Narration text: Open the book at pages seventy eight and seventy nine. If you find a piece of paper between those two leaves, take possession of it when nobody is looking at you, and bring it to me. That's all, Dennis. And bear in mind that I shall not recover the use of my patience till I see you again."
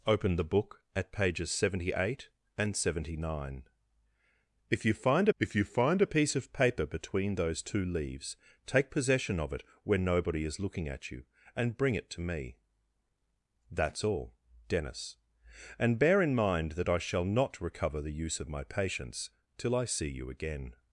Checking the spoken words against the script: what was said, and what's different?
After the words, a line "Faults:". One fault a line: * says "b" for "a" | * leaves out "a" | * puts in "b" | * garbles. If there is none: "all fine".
Open the book at pages seventy eight and seventy nine. If you find if you find a piece of paper between those two leaves, take possession of it when nobody is looking at you, and bring it to me. That's all, Dennis. And bear in mind that I shall not recover the use of my patience till I see you again."
Faults:
* puts in "if you find"